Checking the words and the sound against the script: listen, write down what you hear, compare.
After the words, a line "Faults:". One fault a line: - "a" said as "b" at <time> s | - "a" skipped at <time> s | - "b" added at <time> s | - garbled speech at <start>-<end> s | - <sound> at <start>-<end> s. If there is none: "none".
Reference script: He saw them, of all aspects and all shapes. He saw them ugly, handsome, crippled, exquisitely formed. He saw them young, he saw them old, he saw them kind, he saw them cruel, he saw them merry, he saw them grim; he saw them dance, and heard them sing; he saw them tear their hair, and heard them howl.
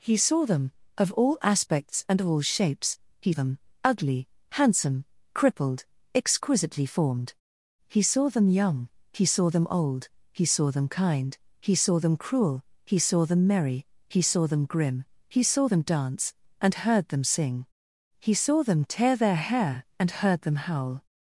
He saw them, of all aspects and all shapes. He them ugly, handsome, crippled, exquisitely formed. He saw them young, he saw them old, he saw them kind, he saw them cruel, he saw them merry, he saw them grim; he saw them dance, and heard them sing; he saw them tear their hair, and heard them howl.
Faults:
- "saw" skipped at 3.3 s